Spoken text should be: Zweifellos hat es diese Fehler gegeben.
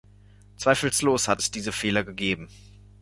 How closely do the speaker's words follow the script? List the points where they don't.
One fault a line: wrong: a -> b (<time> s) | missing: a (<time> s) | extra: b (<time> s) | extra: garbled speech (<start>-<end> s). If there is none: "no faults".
no faults